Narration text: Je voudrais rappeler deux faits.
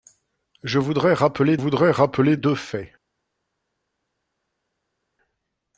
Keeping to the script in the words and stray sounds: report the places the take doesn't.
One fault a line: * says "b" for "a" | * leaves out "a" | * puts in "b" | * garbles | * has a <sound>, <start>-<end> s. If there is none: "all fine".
* puts in "voudrais rappeler"